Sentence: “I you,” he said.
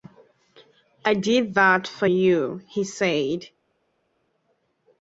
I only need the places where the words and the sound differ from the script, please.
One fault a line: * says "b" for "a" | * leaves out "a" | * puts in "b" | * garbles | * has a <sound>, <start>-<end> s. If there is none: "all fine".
* puts in "did that for"